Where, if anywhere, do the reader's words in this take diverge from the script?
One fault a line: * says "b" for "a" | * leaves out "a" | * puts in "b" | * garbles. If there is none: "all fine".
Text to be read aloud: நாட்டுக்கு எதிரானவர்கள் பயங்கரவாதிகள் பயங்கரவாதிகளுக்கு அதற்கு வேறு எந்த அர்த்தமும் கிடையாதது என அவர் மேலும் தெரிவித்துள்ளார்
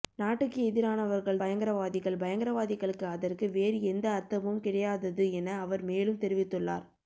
all fine